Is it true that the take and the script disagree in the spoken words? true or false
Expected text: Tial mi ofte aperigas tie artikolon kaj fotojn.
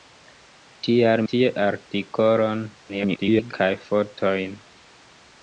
true